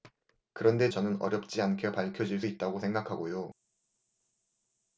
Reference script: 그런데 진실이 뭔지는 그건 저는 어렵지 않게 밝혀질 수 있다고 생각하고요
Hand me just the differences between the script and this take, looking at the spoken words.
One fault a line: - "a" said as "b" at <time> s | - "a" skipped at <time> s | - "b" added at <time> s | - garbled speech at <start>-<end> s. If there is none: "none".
- "진실이 뭔지는 그건" skipped at 0.9 s
- "수" skipped at 2.4 s